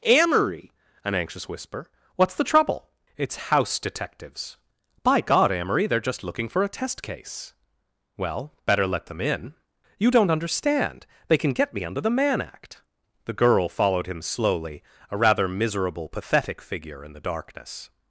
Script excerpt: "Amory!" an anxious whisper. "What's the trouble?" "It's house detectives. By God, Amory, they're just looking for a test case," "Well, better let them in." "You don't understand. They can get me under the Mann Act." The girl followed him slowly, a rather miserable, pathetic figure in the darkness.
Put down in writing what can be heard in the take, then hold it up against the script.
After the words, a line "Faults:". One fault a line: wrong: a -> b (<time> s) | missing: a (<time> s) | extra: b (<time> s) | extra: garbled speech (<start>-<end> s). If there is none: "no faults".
"Amory!" an anxious whisper. "What's the trouble?" "It's house detectives. By God, Amory, they're just looking for a test case," "Well, better let them in." "You don't understand. They can get me under the Mann Act." The girl followed him slowly, a rather miserable, pathetic figure in the darkness.
Faults:
no faults